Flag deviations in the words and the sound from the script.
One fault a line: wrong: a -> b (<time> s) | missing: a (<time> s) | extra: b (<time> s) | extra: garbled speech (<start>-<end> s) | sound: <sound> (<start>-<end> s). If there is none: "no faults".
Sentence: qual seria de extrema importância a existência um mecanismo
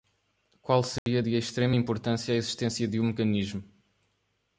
sound: dropout (1.0-1.1 s)
extra: de (2.9 s)